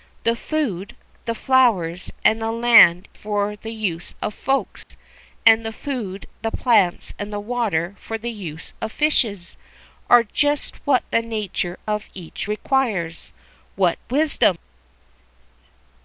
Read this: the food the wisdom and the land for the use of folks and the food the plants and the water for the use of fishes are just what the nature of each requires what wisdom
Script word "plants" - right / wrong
right